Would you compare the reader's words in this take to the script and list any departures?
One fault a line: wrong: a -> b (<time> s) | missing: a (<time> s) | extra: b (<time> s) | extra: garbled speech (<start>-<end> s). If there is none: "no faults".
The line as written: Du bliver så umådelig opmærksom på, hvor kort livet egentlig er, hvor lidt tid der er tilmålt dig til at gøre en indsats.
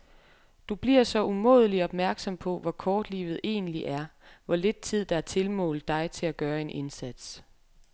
no faults